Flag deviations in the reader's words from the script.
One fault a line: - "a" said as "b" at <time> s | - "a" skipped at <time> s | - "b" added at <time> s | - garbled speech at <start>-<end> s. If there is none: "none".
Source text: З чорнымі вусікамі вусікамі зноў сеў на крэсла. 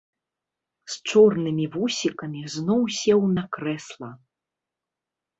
- "вусікамі" skipped at 2.4 s